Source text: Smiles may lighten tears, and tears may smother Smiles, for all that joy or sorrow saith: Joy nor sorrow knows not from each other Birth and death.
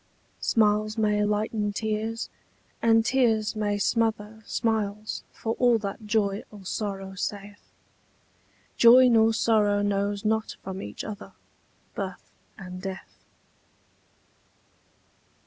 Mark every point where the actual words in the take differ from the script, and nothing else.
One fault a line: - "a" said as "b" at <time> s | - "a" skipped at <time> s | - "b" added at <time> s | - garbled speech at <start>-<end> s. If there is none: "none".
none